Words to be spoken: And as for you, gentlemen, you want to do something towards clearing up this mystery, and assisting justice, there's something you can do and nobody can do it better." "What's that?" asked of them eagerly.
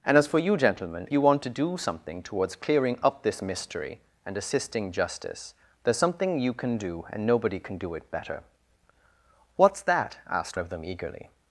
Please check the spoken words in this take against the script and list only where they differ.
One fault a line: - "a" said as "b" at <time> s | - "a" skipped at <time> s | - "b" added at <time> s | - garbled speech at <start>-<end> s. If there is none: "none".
none